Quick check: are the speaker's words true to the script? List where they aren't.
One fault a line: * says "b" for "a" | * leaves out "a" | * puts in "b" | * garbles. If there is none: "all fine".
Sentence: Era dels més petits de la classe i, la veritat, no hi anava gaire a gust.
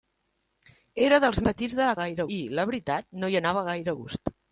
* leaves out "més"
* says "gaire" for "classe"